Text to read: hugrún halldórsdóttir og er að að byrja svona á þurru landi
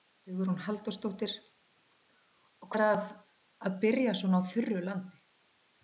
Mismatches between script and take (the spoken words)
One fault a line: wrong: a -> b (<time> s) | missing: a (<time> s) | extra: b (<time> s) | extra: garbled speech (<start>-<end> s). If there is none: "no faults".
no faults